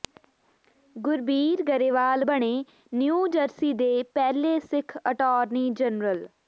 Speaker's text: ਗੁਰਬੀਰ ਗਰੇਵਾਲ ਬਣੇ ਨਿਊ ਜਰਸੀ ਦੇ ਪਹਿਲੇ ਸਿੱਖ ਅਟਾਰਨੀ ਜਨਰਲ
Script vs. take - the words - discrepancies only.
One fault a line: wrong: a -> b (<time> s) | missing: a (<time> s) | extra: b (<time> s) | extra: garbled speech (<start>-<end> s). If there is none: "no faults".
no faults